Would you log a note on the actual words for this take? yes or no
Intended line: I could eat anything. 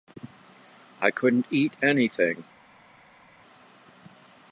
yes